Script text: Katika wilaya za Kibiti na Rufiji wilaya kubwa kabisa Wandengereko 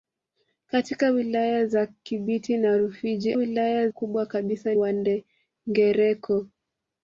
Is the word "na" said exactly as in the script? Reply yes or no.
yes